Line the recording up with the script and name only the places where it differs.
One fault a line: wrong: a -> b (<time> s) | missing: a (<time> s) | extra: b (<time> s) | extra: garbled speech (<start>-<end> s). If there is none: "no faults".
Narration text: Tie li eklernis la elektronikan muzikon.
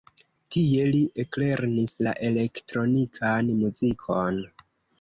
no faults